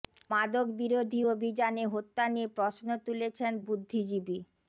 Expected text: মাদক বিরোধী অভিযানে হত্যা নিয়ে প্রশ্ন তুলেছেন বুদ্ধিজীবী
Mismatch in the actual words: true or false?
false